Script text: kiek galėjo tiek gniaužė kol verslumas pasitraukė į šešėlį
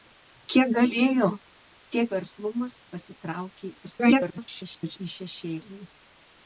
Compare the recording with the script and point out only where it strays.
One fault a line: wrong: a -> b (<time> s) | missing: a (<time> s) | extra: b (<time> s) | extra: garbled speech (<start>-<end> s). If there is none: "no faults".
missing: gniaužė kol (2.1 s)
extra: garbled speech (3.8-5.0 s)